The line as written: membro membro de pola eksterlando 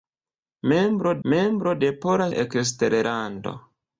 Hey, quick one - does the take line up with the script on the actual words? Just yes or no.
yes